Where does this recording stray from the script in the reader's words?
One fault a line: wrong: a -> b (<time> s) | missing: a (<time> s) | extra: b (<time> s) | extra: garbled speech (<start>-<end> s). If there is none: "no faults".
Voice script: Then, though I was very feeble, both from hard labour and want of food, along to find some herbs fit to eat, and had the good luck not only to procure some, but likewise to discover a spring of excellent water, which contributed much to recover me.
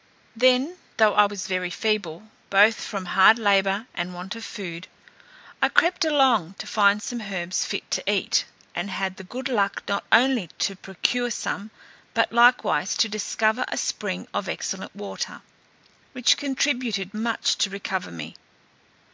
extra: I crept (5.6 s)